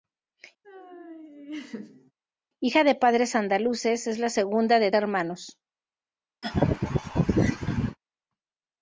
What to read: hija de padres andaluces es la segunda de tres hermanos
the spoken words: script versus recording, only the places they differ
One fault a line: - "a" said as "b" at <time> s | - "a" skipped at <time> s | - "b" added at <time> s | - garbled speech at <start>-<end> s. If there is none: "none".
- "tres" skipped at 4.9 s